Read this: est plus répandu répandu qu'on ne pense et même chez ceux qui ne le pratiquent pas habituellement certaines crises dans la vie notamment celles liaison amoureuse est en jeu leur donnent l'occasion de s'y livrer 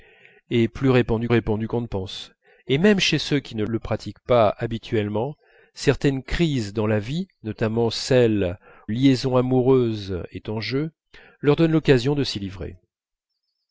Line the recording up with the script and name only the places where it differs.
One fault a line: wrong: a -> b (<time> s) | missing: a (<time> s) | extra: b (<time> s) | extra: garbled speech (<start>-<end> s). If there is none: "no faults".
no faults